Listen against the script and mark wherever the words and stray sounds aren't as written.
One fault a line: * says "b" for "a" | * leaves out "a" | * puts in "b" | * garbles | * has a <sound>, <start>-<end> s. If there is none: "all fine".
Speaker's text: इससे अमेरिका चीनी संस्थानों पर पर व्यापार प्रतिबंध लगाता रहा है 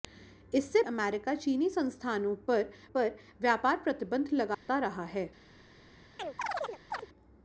* has a dropout, 4.5-4.7 s
* has a chirp, 6.2-7.1 s